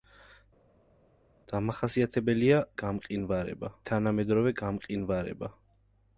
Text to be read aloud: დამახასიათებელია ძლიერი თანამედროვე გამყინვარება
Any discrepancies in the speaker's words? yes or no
yes